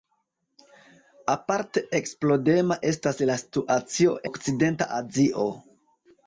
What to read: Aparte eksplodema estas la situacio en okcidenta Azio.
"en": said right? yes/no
no